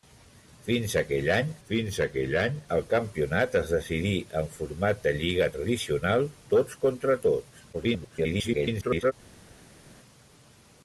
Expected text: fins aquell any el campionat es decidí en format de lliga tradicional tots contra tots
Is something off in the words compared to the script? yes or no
yes